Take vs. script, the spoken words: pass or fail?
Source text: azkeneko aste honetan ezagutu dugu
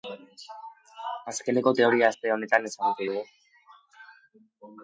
fail